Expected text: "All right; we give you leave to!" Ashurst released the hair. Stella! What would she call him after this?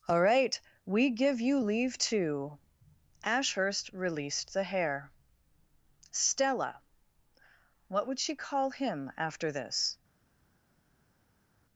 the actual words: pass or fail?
pass